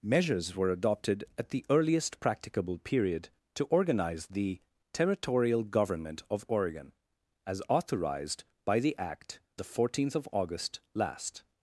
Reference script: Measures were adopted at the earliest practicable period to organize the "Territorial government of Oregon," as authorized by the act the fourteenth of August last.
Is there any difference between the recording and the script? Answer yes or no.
no